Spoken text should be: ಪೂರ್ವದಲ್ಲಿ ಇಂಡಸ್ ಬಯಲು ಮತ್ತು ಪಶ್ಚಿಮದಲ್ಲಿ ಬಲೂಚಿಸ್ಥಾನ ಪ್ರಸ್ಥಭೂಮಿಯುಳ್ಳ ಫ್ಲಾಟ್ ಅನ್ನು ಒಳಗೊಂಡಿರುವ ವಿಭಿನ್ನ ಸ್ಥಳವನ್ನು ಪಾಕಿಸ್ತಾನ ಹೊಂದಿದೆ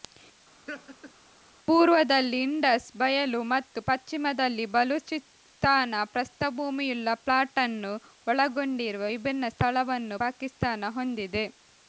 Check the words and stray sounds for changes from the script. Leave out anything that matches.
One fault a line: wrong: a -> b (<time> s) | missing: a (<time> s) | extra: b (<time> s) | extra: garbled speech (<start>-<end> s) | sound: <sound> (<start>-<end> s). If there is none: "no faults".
sound: laugh (0.7-1.1 s)